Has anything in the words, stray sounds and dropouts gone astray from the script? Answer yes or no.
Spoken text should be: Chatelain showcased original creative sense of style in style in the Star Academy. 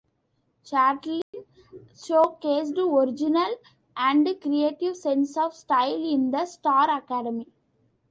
yes